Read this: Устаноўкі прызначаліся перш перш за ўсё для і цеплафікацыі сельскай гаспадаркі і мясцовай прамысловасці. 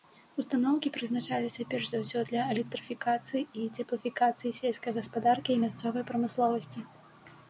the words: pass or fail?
fail